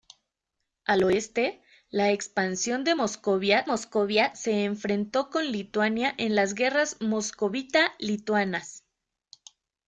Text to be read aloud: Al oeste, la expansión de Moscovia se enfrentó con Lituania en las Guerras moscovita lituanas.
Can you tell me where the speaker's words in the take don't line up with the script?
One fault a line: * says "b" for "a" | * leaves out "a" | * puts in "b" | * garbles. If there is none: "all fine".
* puts in "Moscovia"